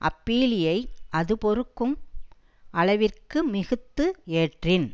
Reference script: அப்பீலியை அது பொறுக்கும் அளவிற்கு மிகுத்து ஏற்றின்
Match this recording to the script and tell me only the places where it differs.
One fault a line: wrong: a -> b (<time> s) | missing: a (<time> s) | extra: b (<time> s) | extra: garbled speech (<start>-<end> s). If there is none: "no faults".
no faults